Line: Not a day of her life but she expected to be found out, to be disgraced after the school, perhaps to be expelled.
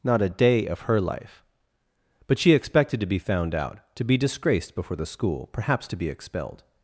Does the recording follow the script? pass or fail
fail